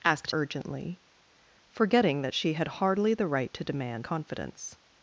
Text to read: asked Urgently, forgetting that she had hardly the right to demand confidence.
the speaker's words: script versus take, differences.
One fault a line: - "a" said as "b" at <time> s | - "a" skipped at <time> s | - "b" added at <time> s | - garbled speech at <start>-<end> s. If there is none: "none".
none